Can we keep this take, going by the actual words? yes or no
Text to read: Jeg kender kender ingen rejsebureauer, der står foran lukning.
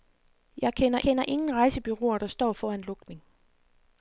yes